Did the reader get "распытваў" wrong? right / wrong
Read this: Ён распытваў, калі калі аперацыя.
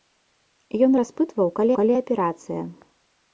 right